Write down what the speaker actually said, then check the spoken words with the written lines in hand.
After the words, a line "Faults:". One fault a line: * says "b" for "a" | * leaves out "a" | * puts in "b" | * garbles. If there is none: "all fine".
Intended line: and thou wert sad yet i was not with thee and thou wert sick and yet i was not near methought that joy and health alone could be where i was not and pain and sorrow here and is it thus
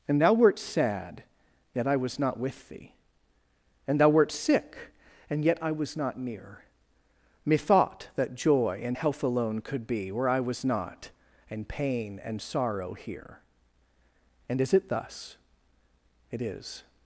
and thou wert sad yet i was not with thee and thou wert sick and yet i was not near methought that joy and health alone could be where i was not and pain and sorrow here and is it thus it is
Faults:
* puts in "it is"